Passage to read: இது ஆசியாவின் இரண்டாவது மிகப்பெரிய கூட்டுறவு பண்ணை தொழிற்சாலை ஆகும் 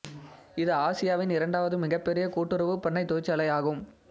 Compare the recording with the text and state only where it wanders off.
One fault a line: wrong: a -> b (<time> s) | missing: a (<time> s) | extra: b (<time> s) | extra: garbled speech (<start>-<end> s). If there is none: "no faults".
no faults